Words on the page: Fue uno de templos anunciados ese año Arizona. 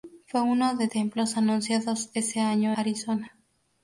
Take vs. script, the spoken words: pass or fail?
pass